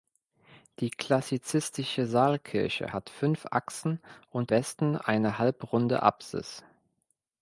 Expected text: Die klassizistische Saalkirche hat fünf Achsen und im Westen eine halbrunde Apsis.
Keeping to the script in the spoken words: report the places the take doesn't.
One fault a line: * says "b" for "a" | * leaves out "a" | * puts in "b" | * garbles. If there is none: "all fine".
* leaves out "im"